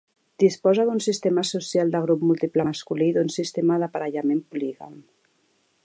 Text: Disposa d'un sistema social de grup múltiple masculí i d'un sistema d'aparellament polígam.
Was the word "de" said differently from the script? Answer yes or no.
no